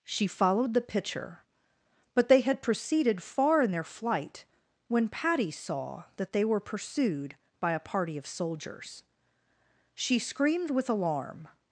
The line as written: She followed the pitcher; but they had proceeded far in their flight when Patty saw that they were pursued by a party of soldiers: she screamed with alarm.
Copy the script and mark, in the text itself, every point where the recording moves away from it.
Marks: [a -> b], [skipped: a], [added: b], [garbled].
She followed the pitcher; but they had proceeded far in their flight when Patty saw that they were pursued by a party of soldiers: she screamed with alarm.